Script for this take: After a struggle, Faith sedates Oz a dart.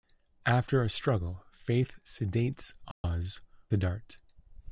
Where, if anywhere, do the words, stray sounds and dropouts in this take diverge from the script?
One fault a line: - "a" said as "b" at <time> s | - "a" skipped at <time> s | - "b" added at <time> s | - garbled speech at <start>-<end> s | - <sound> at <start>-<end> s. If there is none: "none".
- dropout at 2.9-3.0 s